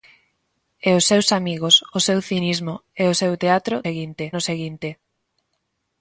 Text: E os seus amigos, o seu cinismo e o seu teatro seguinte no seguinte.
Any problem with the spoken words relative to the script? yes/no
no